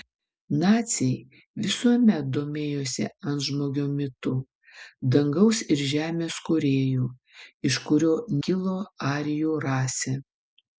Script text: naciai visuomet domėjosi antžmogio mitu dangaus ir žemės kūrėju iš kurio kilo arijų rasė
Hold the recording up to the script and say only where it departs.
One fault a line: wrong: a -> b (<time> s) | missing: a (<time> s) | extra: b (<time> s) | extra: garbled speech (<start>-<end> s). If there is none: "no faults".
no faults